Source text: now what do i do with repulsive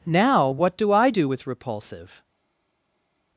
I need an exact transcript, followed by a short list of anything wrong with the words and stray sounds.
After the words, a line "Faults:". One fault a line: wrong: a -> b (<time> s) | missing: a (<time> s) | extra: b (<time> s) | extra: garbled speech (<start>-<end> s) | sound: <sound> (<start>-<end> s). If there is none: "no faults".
now what do i do with repulsive
Faults:
no faults